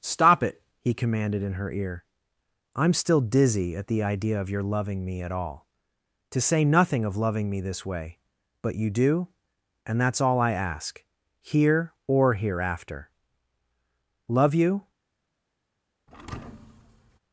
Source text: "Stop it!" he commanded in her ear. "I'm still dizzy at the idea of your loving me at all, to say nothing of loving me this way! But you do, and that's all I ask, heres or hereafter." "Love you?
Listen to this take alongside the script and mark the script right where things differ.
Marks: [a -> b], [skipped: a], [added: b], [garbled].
"Stop it!" he commanded in her ear. "I'm still dizzy at the idea of your loving me at all, to say nothing of loving me this way! But you do, and that's all I ask, [heres -> here] or hereafter." "Love you?